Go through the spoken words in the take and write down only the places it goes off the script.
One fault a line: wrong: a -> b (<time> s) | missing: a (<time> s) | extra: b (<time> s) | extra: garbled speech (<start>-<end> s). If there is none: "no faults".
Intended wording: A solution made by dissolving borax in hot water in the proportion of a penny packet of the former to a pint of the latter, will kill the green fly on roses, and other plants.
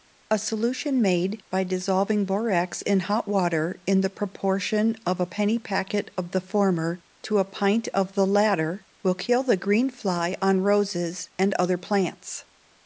no faults